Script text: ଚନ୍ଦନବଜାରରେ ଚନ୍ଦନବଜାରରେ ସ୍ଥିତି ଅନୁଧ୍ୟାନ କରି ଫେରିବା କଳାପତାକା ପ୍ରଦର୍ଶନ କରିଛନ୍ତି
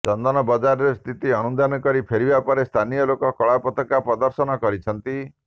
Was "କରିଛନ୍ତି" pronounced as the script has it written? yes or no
yes